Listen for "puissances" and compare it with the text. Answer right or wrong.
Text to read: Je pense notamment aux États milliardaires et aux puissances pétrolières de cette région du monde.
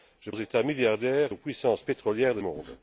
right